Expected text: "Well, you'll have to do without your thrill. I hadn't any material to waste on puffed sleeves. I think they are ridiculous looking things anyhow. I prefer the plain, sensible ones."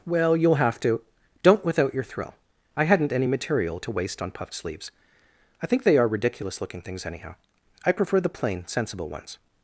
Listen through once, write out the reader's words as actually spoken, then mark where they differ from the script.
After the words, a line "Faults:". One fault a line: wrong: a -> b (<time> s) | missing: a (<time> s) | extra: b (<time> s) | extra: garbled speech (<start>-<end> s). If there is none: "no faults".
"Well, you'll have to don't without your thrill. I hadn't any material to waste on puffed sleeves. I think they are ridiculous looking things anyhow. I prefer the plain, sensible ones."
Faults:
wrong: do -> don't (1.4 s)